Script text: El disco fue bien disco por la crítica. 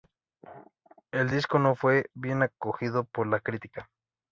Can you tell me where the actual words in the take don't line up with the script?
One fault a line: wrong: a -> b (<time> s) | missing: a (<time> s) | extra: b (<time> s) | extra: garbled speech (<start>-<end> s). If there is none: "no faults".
extra: no (1.6 s)
wrong: disco -> acogido (2.4 s)